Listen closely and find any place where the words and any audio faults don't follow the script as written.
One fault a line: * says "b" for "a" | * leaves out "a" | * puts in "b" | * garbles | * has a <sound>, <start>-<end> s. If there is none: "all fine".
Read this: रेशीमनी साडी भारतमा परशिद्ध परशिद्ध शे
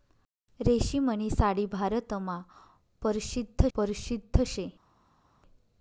all fine